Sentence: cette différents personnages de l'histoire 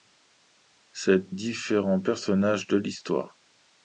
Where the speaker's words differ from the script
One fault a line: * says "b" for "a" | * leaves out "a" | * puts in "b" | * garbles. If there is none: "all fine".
all fine